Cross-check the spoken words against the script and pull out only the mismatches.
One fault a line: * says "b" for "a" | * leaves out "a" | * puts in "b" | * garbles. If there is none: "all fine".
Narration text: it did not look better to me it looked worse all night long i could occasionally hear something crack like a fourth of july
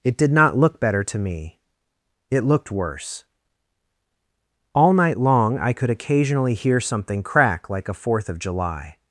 all fine